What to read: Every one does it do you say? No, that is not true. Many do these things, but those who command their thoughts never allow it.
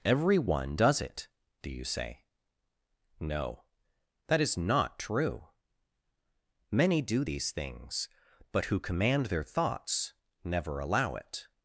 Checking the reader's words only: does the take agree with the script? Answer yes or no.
no